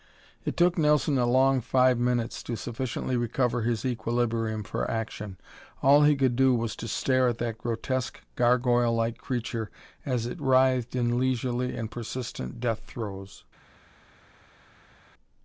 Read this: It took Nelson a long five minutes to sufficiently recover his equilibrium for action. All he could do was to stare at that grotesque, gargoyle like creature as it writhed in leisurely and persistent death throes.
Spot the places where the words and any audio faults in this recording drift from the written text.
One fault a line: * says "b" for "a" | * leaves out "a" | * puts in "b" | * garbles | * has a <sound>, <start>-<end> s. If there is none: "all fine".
all fine